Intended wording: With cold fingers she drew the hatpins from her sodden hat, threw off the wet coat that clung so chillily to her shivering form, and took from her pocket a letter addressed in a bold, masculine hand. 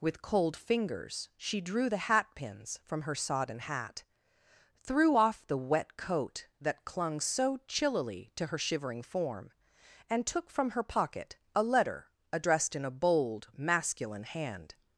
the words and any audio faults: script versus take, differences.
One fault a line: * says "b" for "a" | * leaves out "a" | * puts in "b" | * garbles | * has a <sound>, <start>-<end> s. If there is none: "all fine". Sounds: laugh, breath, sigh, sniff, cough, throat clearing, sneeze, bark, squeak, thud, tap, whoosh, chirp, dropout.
all fine